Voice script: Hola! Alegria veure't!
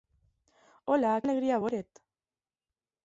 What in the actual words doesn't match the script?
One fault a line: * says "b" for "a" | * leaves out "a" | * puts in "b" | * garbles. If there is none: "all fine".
all fine